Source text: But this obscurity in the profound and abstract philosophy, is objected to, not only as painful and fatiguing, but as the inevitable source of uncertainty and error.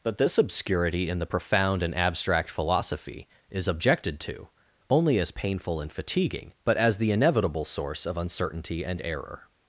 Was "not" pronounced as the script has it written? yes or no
no